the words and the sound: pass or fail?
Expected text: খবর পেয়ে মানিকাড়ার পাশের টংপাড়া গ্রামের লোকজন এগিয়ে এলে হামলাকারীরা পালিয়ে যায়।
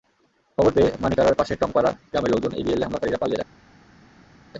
pass